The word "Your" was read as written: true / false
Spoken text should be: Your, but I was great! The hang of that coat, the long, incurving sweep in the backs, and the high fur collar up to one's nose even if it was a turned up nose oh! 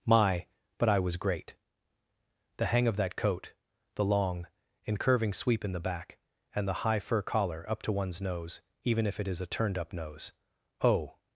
false